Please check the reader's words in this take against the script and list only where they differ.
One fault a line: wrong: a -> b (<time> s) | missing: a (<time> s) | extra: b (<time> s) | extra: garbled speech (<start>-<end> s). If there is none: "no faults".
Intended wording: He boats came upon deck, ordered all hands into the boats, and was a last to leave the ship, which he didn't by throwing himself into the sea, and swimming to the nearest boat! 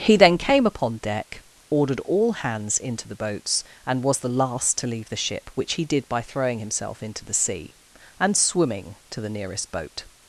wrong: boats -> then (0.1 s)
wrong: a -> the (4.2 s)
wrong: didn't -> did (5.8 s)